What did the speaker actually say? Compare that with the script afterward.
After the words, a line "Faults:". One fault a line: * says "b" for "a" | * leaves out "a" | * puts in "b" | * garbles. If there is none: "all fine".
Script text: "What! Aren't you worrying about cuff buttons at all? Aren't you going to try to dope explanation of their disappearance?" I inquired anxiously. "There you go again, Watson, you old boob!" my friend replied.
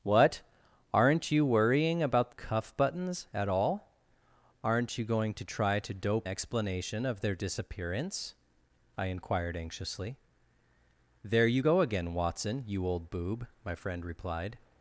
"What! Aren't you worrying about cuff buttons at all? Aren't you going to try to dope explanation of their disappearance?" I inquired anxiously. "There you go again, Watson, you old boob!" my friend replied.
Faults:
all fine